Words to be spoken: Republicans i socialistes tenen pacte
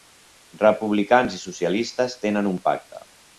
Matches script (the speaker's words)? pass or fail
fail